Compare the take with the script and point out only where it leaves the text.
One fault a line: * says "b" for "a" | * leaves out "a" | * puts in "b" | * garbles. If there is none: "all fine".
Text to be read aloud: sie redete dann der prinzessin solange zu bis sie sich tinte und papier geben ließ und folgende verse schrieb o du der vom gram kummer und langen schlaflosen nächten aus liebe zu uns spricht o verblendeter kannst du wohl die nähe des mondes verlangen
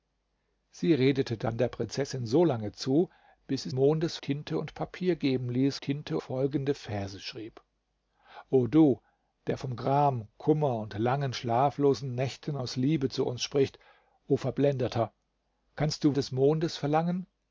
* says "mondes" for "sich"
* says "tinte" for "und"
* leaves out "wohl die nähe"